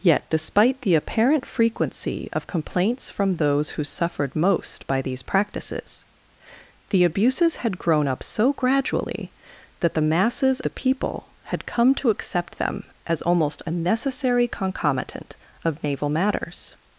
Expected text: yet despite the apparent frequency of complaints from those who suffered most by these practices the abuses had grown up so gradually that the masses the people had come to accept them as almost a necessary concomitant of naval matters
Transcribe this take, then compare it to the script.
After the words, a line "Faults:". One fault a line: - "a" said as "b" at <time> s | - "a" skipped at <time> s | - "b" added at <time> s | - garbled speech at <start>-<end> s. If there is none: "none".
yet despite the apparent frequency of complaints from those who suffered most by these practices the abuses had grown up so gradually that the masses the people had come to accept them as almost a necessary concomitant of naval matters
Faults:
none